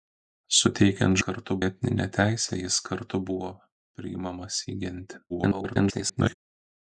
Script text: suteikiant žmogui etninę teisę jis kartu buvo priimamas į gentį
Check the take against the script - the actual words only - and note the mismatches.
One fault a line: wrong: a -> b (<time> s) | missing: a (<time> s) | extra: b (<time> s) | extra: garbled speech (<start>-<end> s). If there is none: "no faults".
wrong: žmogui -> kartu (1.3 s)
extra: garbled speech (5.3-6.3 s)